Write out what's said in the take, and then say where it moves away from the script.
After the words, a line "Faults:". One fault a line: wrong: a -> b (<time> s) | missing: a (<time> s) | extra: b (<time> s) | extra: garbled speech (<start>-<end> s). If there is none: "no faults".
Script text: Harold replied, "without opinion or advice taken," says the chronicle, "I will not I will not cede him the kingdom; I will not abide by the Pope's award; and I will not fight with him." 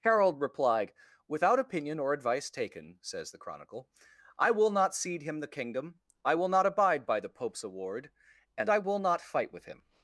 Harold replied, "without opinion or advice taken," says the chronicle, "I will not cede him the kingdom; I will not abide by the Pope's award; and I will not fight with him."
Faults:
missing: I will not (5.0 s)